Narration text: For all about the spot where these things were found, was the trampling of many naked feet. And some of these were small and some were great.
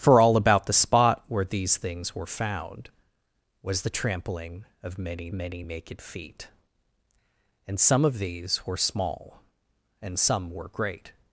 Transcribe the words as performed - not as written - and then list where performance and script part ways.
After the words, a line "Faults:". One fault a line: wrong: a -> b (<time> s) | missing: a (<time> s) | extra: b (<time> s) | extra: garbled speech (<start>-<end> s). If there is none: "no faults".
For all about the spot where these things were found, was the trampling of many many naked feet. And some of these were small and some were great.
Faults:
extra: many (5.3 s)